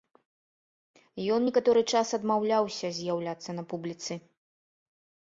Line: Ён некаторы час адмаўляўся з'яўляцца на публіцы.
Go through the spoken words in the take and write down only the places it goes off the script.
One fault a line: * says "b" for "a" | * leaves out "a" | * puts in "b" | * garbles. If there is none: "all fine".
all fine